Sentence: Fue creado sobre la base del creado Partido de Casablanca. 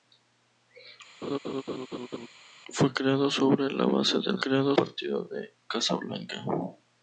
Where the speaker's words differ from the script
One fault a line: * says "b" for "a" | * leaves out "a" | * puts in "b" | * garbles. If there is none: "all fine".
all fine